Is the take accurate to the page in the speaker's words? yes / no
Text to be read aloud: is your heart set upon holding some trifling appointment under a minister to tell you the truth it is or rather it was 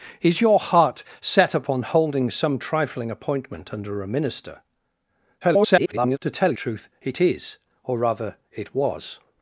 no